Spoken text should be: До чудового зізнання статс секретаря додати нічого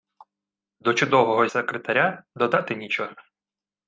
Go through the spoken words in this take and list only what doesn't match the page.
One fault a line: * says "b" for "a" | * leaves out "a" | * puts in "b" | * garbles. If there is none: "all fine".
* leaves out "зізнання статс"